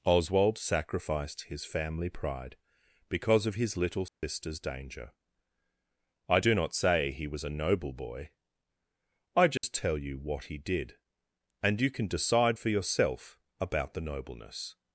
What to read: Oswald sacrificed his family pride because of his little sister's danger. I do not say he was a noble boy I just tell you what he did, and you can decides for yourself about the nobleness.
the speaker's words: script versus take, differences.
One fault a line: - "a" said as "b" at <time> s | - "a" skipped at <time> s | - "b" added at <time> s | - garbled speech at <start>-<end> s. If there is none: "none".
- "decides" said as "decide" at 12.1 s